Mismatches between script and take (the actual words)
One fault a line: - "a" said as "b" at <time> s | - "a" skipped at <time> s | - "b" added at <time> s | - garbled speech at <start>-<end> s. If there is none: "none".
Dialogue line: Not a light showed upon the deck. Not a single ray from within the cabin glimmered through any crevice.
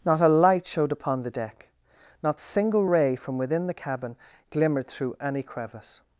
- "a" skipped at 2.4 s